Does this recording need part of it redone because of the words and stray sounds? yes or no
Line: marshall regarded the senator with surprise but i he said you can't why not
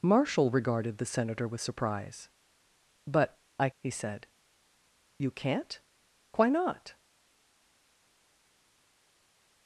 no